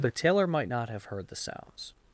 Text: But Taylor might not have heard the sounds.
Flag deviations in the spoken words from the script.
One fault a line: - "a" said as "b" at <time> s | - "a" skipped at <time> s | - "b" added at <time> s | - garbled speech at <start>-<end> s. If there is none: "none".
none